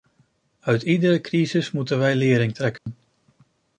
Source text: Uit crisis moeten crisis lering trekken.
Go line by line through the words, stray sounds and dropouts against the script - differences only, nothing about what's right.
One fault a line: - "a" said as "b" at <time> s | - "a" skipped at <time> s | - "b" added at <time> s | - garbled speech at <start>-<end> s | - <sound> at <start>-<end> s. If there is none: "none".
- "iedere" added at 0.8 s
- "crisis" said as "wij" at 2.0 s
- dropout at 2.8-2.9 s